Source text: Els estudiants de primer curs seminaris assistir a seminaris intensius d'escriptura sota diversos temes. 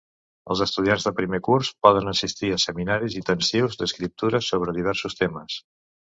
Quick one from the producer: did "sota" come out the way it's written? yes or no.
no